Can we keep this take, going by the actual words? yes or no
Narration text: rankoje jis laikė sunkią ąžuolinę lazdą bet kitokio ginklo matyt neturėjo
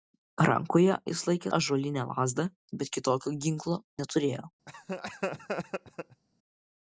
no